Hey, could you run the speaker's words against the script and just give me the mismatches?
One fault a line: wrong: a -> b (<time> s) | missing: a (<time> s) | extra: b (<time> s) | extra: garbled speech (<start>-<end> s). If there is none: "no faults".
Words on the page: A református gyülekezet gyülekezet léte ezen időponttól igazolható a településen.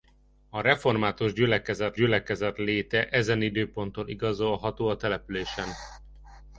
no faults